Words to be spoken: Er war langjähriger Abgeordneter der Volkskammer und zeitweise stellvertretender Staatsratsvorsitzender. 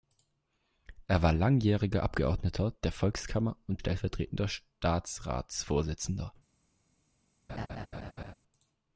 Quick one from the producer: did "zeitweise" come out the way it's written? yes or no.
no